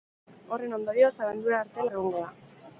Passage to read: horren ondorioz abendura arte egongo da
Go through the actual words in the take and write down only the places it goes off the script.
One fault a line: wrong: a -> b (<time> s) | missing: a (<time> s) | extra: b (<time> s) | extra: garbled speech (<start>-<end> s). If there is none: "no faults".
no faults